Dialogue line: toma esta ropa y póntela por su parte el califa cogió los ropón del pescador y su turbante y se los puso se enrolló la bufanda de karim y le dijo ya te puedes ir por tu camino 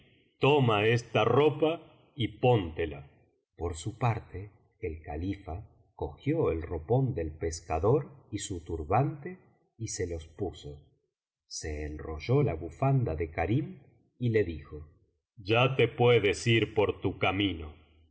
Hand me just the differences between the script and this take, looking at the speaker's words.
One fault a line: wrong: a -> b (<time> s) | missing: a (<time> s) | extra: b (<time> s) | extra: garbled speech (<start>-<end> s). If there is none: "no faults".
wrong: los -> el (6.5 s)